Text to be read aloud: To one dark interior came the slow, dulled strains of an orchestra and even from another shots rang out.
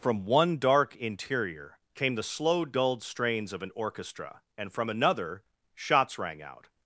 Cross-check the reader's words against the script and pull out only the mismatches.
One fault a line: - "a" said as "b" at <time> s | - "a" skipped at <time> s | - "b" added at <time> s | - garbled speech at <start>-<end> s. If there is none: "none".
- "To" said as "From" at 0.0 s
- "even" skipped at 4.7 s